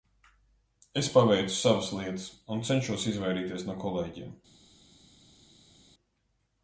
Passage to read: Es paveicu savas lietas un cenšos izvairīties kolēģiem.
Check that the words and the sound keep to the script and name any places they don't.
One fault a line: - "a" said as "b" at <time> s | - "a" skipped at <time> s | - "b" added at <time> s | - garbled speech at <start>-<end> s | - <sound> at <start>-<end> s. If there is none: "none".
- "no" added at 3.7 s